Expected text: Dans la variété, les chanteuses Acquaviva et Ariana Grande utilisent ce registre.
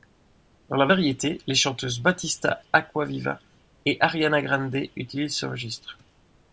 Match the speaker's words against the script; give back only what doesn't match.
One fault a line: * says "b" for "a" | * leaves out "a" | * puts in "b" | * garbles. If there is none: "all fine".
* puts in "Battista"